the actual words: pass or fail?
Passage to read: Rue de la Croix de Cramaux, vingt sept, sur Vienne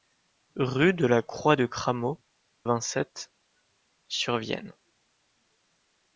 pass